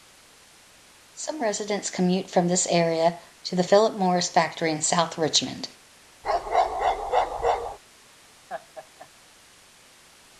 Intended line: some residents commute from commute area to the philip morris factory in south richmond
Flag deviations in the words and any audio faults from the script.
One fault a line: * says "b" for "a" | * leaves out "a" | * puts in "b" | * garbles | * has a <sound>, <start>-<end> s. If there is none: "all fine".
* says "this" for "commute"
* has a bark, 6.2-7.8 s
* has a laugh, 8.5-9.1 s